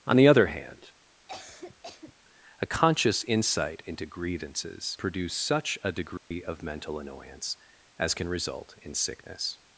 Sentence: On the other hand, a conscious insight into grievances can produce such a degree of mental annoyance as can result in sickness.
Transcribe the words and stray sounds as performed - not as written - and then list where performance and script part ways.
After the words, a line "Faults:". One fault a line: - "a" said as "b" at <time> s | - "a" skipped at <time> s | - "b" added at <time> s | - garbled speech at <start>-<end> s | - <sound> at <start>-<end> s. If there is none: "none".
On the other hand, a conscious insight into grievances produce such a degree of mental annoyance as can result in sickness.
Faults:
- cough at 1.3-2.1 s
- "can" skipped at 5.0 s
- dropout at 6.2-6.3 s